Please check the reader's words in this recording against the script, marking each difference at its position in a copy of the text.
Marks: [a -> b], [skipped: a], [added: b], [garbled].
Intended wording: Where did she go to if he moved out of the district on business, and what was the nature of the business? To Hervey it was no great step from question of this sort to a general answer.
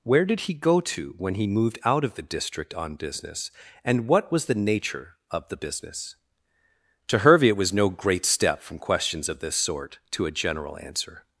Where did [she -> he] go to [if -> when] he moved out of the district on business, and what was the nature of the business? To Hervey it was no great step from [question -> questions] of this sort to a general answer.